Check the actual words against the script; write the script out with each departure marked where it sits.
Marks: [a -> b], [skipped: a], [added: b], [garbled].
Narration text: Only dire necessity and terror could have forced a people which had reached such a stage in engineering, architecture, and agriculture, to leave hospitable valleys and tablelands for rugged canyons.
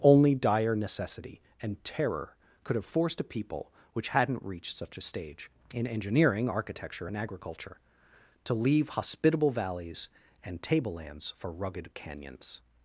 Only dire necessity and terror could have forced a people which [had -> hadn't] reached such a stage in engineering, architecture, and agriculture, to leave hospitable valleys and tablelands for rugged canyons.